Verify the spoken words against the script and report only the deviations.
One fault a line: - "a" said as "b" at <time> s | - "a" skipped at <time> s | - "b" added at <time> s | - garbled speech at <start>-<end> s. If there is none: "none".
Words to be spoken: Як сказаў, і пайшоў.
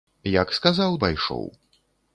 none